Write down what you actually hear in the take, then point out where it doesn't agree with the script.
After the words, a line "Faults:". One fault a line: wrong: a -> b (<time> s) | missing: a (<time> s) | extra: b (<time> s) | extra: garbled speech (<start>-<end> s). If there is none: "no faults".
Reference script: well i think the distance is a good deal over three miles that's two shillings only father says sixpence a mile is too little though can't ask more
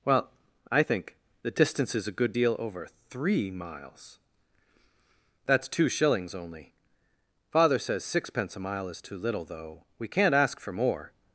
well i think the distance is a good deal over three miles that's two shillings only father says sixpence a mile is too little though we can't ask for more
Faults:
extra: we (10.0 s)
extra: for (10.6 s)